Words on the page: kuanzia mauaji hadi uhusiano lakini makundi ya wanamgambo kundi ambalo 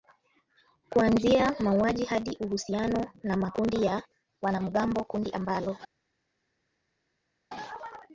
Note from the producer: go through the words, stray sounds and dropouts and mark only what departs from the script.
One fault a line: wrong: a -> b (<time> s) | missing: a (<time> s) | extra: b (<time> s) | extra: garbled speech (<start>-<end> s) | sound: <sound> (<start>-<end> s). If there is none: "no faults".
wrong: lakini -> na (3.2 s)